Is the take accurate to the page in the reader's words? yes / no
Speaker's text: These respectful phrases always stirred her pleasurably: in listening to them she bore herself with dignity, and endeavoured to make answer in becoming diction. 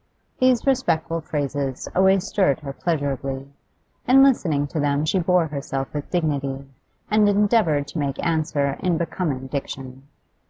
yes